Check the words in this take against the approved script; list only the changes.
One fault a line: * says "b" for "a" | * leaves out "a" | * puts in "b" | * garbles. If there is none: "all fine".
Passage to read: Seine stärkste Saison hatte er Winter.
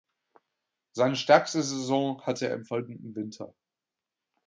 * puts in "im folgenden"